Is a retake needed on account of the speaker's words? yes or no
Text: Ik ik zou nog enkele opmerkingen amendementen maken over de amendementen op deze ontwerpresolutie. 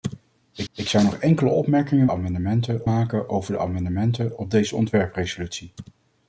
no